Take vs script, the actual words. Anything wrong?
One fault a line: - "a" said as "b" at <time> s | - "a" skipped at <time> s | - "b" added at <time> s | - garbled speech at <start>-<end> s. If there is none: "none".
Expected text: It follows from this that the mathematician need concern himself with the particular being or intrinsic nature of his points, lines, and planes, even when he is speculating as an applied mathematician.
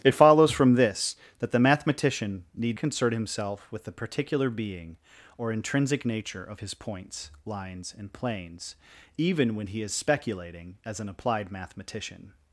none